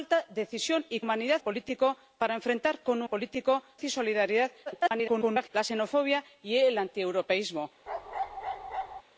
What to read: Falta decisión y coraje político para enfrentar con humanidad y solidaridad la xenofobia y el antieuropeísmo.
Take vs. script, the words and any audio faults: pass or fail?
fail